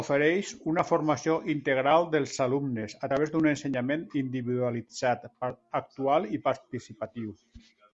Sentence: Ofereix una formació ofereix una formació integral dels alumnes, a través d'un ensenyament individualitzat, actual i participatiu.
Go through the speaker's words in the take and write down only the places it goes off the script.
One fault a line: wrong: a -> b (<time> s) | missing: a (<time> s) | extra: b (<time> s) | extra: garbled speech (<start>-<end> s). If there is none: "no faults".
missing: ofereix una formació (1.4 s)